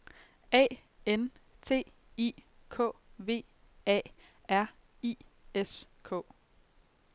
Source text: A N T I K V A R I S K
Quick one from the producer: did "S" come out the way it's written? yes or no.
yes